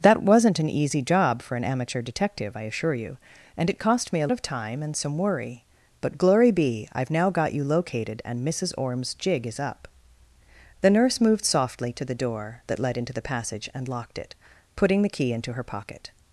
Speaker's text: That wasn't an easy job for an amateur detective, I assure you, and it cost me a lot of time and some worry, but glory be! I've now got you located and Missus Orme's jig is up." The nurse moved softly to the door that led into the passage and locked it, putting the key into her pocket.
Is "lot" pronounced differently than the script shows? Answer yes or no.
yes